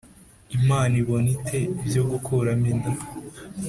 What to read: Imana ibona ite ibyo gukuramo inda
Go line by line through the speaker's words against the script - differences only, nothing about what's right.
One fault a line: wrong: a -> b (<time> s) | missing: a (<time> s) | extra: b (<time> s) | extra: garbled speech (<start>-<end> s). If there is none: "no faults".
no faults